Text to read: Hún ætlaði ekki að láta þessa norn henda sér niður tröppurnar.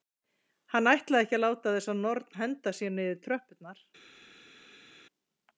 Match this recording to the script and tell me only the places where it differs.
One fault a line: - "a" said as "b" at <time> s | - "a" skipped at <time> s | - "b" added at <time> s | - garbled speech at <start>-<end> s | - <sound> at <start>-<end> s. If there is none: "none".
- "Hún" said as "Hann" at 0.8 s